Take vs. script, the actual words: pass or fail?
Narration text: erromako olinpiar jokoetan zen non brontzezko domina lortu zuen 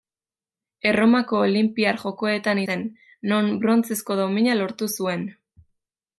pass